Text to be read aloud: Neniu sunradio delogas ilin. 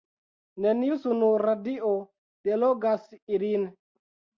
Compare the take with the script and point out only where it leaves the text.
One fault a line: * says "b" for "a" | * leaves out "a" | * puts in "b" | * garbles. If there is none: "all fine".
all fine